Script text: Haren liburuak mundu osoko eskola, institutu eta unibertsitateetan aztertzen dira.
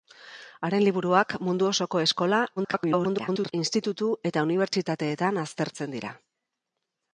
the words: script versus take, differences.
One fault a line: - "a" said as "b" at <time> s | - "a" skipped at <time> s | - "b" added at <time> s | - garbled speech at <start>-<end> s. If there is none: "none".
- garbled speech at 2.6-3.5 s